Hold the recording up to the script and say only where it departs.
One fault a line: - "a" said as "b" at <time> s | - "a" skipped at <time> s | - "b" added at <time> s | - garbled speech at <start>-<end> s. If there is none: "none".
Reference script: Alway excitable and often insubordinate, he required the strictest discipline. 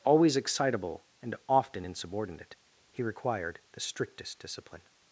- "Alway" said as "Always" at 0.0 s